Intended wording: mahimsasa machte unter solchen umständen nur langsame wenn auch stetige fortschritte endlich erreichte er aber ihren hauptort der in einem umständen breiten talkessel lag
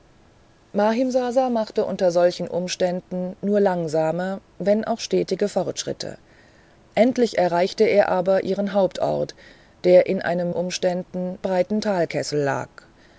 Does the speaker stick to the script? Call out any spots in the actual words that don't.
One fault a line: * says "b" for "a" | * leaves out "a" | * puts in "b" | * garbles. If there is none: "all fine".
all fine